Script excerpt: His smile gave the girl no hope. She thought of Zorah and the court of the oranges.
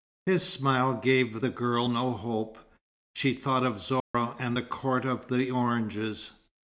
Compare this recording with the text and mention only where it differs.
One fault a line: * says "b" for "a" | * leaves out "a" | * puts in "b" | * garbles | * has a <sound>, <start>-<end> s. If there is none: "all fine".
* has a dropout, 4.0-4.1 s